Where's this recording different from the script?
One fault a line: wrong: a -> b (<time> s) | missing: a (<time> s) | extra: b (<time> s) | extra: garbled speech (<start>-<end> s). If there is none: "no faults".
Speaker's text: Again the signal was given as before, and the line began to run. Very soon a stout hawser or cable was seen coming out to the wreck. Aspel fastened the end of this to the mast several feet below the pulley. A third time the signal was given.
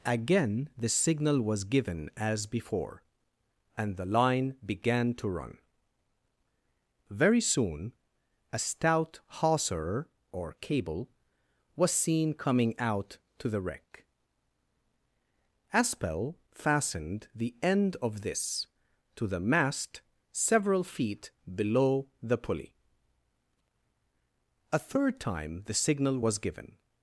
no faults